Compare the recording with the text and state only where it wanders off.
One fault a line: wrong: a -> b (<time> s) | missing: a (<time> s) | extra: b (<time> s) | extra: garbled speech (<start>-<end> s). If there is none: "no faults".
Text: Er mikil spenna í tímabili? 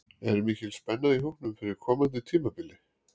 extra: hópnum fyrir komandi (1.2 s)